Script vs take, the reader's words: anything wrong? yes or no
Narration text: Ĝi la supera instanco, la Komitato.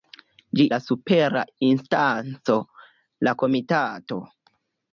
no